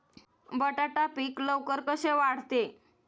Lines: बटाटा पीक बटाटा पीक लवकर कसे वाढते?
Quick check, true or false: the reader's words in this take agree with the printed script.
false